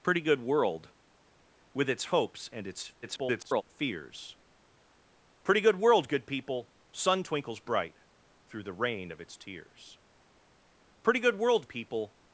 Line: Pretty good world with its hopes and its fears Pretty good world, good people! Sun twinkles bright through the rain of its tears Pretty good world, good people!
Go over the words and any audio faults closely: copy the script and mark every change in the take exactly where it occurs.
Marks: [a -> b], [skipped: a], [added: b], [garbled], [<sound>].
Pretty good world with its hopes and its [garbled] fears Pretty good world, good people! Sun twinkles bright through the rain of its tears Pretty good world, [skipped: good] people!